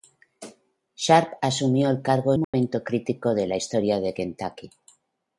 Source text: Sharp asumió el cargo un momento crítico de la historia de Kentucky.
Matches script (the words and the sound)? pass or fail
fail